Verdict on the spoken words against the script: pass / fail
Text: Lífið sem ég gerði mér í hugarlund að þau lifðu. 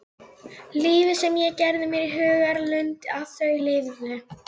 pass